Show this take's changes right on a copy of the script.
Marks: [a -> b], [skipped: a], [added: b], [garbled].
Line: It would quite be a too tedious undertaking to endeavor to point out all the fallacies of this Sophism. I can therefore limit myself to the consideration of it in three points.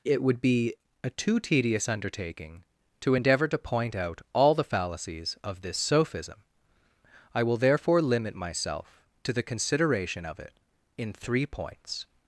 It would [skipped: quite] be a too tedious undertaking to endeavor to point out all the fallacies of this Sophism. I [can -> will] therefore limit myself to the consideration of it in three points.